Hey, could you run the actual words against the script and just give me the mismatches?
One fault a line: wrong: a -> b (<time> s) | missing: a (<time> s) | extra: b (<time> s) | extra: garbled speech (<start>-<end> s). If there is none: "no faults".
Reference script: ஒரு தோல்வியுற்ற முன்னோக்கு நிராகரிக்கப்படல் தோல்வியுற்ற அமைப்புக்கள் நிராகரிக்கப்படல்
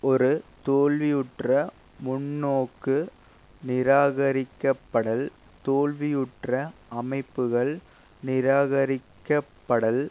no faults